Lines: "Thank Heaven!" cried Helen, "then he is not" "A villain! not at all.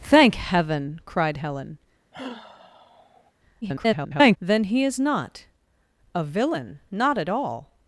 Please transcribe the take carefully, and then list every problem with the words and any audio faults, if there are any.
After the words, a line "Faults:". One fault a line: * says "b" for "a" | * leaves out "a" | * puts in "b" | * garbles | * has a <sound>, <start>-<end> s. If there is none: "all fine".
"Thank Heaven!" cried Helen, [garbled] "then he is not" "A villain! not at all.
Faults:
* has a sigh, 2.1-3.3 s
* garbles